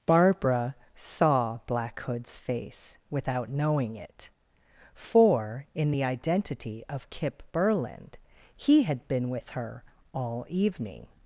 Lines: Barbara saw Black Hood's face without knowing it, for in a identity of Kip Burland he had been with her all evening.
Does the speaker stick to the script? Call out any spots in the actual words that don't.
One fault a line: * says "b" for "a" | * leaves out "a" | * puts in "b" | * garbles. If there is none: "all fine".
* says "the" for "a"